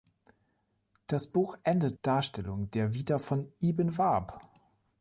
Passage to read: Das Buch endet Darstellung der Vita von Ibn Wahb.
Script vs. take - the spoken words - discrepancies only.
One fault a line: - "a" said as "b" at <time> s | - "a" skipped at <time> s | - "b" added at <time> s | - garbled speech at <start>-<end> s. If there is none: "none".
none